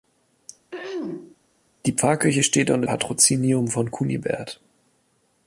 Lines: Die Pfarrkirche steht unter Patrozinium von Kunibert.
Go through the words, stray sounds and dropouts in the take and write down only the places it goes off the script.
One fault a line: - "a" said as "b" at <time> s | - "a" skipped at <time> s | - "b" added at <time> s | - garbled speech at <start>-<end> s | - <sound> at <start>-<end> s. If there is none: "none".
- throat clearing at 0.7-1.4 s